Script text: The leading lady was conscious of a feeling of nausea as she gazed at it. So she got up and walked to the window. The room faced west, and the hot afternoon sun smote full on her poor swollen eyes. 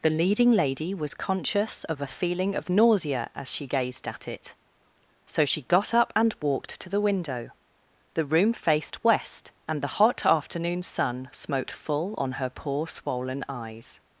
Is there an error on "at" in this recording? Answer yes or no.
no